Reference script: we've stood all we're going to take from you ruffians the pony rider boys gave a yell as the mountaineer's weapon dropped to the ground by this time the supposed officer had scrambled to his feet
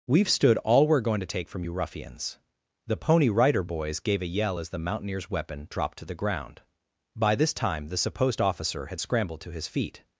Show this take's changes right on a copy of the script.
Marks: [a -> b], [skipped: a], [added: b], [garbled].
we've stood all we're going to take from you ruffians the pony rider boys gave a yell as the mountaineer's weapon dropped to the ground by this time the supposed officer had scrambled to his feet